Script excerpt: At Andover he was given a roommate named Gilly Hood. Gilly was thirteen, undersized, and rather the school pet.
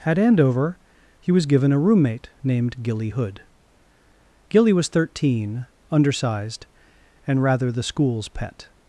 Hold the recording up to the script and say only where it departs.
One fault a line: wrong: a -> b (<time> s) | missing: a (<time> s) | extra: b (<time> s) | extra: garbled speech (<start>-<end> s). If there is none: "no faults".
wrong: school -> schools (7.8 s)